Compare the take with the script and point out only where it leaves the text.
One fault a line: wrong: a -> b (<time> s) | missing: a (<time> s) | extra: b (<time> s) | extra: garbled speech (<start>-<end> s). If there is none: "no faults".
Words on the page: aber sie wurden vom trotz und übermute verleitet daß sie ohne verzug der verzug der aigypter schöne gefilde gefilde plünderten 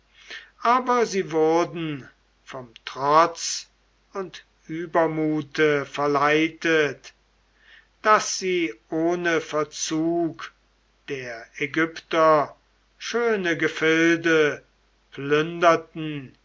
missing: verzug der (11.4 s)
missing: gefilde (14.6 s)